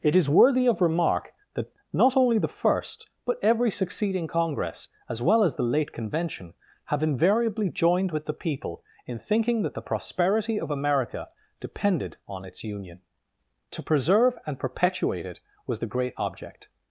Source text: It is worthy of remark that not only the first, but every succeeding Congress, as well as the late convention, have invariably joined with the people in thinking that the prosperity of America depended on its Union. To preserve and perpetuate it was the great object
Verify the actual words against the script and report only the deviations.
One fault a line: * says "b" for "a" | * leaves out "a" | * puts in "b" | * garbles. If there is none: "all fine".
all fine